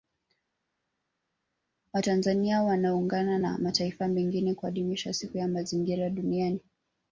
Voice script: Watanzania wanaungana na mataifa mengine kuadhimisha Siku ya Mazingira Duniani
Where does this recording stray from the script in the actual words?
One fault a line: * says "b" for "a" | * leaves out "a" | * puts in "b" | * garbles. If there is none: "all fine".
all fine